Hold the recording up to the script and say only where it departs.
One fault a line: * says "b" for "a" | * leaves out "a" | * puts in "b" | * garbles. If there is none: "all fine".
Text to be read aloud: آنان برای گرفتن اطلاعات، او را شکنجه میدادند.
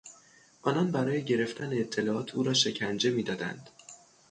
all fine